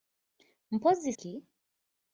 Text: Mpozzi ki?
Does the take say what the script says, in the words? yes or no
yes